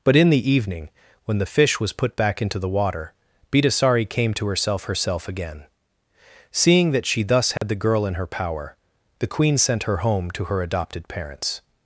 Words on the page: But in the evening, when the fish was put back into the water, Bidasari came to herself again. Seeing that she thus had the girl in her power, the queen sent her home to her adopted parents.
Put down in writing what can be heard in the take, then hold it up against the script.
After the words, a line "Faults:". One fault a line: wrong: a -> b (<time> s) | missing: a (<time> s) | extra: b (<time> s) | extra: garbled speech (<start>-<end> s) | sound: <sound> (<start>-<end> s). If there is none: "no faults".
But in the evening, when the fish was put back into the water, Bidasari came to herself herself again. Seeing that she thus had the girl in her power, the queen sent her home to her adopted parents.
Faults:
extra: herself (4.8 s)
sound: dropout (7.6-7.6 s)